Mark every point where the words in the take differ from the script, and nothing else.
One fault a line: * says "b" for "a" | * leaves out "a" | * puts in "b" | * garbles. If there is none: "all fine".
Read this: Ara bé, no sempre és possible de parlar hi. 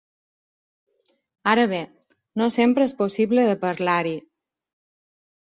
all fine